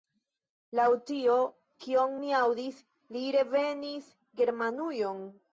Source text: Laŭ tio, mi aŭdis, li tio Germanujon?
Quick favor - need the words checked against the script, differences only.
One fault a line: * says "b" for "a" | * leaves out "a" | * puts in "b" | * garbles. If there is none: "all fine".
* puts in "kion"
* says "revenis" for "tio"